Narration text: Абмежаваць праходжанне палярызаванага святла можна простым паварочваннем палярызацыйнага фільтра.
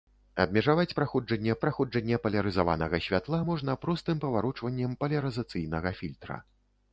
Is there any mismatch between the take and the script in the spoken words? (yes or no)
yes